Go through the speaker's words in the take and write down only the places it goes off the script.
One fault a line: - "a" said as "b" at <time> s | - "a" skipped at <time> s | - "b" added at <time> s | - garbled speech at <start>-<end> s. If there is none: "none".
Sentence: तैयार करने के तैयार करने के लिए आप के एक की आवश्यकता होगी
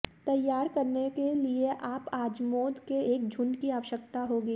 - "तैयार करने के" skipped at 1.3 s
- "अजमोद" added at 2.1 s
- "झुंड" added at 3.3 s